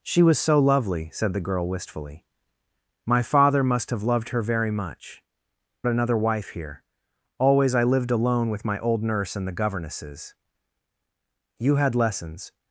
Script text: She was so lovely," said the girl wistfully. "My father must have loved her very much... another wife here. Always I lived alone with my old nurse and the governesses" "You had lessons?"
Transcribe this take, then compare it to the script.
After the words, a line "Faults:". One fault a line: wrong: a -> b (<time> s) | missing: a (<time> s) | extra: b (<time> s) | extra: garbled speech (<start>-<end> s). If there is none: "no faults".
She was so lovely," said the girl wistfully. "My father must have loved her very much... another wife here. Always I lived alone with my old nurse and the governesses" "You had lessons?"
Faults:
no faults